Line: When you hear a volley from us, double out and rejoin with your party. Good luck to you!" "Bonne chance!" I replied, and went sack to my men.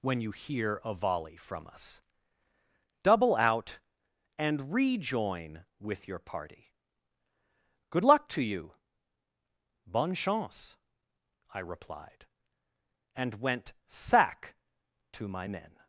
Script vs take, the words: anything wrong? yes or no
no